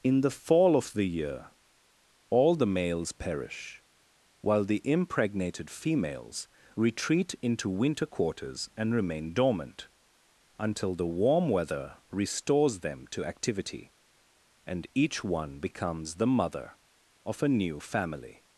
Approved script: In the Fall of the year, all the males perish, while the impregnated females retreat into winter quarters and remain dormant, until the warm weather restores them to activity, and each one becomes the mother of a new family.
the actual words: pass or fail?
pass